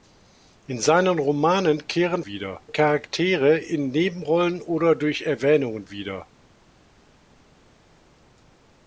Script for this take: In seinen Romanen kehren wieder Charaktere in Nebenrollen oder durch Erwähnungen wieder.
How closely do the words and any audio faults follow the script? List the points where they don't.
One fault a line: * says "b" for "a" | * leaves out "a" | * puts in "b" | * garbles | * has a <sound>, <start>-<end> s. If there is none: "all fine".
all fine